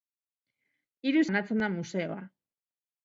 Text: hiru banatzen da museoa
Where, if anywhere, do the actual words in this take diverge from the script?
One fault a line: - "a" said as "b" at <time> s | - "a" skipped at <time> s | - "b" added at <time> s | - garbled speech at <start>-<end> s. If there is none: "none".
none